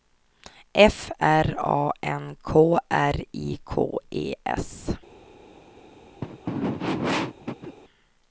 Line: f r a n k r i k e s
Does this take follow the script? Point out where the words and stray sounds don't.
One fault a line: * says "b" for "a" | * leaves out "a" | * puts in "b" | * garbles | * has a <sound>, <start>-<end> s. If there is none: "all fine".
* has a throat clearing, 6.2-7.8 s